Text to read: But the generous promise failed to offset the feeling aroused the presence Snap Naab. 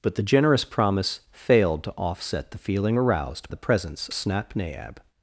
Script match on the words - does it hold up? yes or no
yes